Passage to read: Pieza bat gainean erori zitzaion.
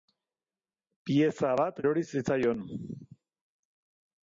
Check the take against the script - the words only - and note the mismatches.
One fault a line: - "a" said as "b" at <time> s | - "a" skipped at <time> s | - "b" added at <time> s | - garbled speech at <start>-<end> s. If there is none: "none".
- "gainean" skipped at 1.8 s